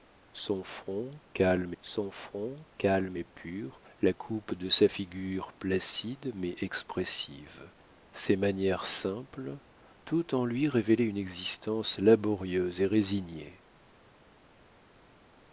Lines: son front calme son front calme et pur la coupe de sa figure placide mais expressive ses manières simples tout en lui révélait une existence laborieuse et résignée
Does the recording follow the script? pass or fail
pass